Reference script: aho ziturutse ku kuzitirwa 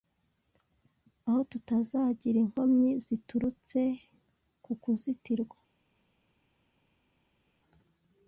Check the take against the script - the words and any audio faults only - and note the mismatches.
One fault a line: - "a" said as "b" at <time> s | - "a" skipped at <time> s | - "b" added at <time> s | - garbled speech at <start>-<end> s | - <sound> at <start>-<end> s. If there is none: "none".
- "tutazagira inkomyi" added at 1.5 s